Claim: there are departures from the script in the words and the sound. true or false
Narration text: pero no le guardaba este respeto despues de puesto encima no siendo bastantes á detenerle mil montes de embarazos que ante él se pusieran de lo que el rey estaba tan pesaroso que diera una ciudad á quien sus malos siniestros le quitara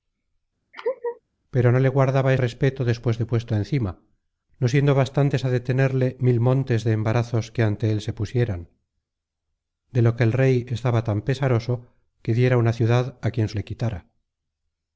true